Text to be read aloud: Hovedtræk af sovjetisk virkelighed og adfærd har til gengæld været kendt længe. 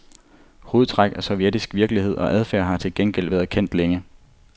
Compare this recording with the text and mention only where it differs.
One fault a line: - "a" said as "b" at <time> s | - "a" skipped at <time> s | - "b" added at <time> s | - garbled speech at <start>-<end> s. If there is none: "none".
none